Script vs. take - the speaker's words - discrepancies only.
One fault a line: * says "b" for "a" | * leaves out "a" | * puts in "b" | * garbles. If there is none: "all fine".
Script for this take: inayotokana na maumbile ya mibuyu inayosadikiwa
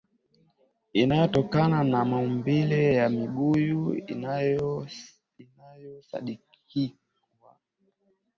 all fine